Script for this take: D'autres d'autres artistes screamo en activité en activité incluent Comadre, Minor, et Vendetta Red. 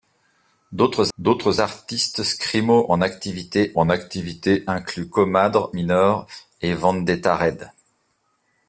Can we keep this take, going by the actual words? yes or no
yes